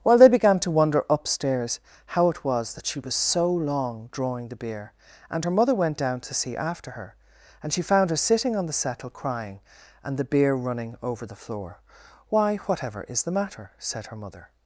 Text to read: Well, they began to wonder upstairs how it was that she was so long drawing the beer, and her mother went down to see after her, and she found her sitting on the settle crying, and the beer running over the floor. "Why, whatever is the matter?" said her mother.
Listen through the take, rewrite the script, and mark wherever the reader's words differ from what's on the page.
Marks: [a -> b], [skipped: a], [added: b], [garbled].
Well, they began to wonder upstairs how it was that she was so long drawing the beer, and her mother went down to see after her, and she found her sitting on the settle crying, and the beer running over the floor. "Why, whatever is the matter?" said her mother.